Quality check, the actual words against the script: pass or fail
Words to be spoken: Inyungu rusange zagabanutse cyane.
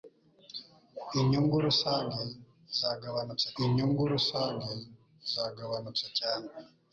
fail